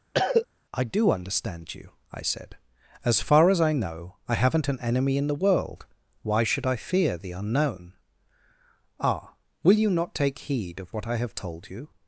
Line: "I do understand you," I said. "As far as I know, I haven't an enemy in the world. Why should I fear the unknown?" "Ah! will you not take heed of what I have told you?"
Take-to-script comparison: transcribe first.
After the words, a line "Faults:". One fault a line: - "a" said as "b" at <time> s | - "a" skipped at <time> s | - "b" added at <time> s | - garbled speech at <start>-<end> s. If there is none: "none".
"I do understand you," I said. "As far as I know, I haven't an enemy in the world. Why should I fear the unknown?" "Ah! will you not take heed of what I have told you?"
Faults:
none